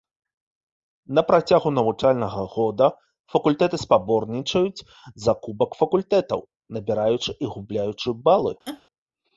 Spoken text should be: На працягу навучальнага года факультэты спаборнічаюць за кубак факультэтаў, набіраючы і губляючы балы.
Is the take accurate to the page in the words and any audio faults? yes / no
no